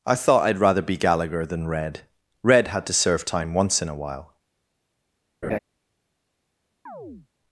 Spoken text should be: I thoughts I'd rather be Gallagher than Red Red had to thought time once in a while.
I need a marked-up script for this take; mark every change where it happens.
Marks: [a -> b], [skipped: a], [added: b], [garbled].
I [thoughts -> thought] I'd rather be Gallagher than Red Red had to [thought -> serve] time once in a while.